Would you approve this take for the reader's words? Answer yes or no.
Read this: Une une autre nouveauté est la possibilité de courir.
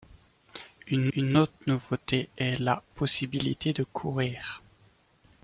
yes